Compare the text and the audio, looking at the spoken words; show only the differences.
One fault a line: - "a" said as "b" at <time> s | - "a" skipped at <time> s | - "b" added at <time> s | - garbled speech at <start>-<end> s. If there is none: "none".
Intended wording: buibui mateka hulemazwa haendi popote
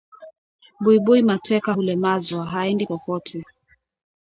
none